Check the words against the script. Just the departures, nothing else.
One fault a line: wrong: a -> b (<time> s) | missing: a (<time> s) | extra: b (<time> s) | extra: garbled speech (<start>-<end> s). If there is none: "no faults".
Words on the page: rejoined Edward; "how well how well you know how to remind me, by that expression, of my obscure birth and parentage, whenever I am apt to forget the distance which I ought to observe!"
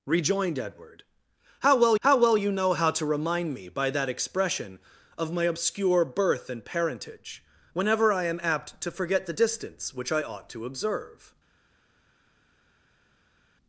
no faults